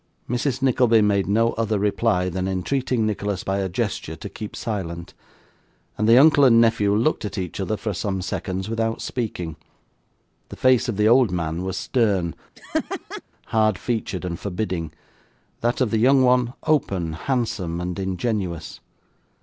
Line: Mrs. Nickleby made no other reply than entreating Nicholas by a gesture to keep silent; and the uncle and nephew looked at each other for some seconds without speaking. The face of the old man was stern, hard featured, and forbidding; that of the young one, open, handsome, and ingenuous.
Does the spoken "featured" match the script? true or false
true